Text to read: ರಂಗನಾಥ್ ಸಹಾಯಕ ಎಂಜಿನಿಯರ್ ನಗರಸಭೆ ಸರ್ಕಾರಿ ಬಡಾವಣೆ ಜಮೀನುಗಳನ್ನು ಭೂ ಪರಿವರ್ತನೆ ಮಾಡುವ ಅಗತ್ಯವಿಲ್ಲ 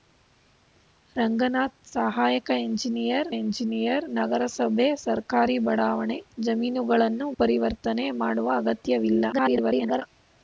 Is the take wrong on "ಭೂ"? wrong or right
wrong